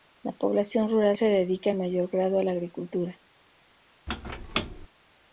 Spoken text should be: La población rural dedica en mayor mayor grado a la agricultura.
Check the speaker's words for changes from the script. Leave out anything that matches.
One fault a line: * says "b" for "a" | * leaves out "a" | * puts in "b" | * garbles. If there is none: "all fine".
* puts in "se"
* leaves out "mayor"